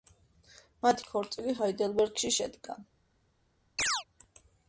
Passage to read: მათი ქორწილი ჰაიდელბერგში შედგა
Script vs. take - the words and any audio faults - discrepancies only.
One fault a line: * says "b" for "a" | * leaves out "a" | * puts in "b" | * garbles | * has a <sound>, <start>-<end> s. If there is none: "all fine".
* has a chirp, 3.8-4.0 s